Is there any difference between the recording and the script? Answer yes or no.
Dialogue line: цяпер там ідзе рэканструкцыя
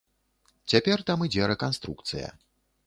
no